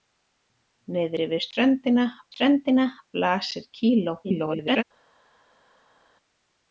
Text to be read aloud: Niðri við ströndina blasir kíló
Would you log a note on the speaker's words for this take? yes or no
yes